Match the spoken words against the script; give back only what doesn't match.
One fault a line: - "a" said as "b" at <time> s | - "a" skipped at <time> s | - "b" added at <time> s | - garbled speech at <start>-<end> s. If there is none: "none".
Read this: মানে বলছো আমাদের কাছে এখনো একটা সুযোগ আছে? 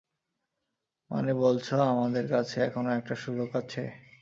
none